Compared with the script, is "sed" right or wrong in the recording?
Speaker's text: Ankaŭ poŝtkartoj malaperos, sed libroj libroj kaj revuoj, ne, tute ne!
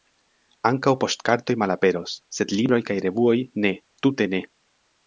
right